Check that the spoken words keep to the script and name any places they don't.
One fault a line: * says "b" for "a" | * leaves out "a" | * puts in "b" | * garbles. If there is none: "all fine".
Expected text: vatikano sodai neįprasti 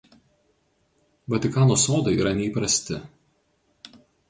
* puts in "yra"